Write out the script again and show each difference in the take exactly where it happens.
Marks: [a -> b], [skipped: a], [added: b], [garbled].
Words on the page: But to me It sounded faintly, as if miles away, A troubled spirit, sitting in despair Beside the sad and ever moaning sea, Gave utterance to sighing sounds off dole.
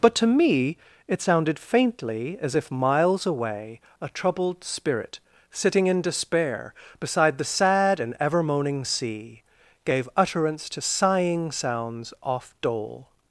But to me It sounded faintly, as if miles away, A troubled spirit, sitting in despair Beside the sad and ever moaning sea, Gave utterance to sighing sounds off dole.